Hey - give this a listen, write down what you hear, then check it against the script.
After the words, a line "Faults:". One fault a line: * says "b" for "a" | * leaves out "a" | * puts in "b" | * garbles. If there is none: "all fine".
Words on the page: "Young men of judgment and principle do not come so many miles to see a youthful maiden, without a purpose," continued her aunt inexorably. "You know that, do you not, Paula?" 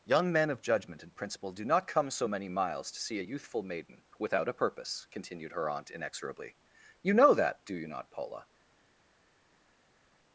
"Young men of judgment and principle do not come so many miles to see a youthful maiden, without a purpose," continued her aunt inexorably. "You know that, do you not, Paula?"
Faults:
all fine